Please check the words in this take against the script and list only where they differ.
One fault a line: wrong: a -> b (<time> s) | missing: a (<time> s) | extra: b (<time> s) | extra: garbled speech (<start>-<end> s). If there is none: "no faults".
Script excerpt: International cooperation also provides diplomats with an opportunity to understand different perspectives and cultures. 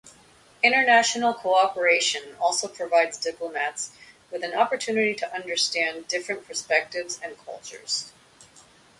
no faults